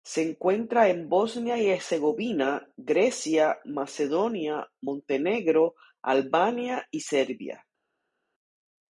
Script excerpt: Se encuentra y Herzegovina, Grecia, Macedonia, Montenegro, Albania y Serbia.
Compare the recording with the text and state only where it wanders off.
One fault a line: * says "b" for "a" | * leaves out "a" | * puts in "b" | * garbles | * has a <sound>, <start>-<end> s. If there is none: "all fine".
* puts in "en Bosnia"